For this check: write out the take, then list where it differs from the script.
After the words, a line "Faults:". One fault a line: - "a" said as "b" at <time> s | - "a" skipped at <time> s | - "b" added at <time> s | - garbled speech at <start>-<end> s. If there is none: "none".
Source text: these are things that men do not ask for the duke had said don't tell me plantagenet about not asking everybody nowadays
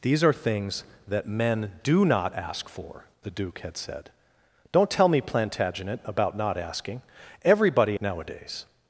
these are things that men do not ask for the duke had said don't tell me plantagenet about not asking everybody nowadays
Faults:
none